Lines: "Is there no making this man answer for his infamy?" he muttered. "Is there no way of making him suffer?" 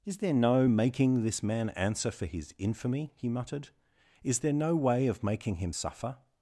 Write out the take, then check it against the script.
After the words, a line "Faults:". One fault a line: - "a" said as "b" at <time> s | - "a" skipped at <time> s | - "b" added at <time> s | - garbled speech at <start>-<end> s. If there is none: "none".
"Is there no making this man answer for his infamy?" he muttered. "Is there no way of making him suffer?"
Faults:
none